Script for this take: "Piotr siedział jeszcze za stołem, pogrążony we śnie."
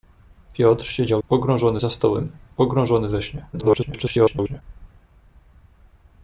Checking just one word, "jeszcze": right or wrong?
wrong